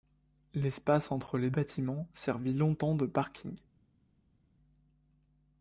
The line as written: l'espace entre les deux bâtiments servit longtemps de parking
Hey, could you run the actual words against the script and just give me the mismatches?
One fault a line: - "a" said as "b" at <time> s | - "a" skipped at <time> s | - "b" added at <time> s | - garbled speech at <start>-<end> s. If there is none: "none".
- "deux" skipped at 1.5 s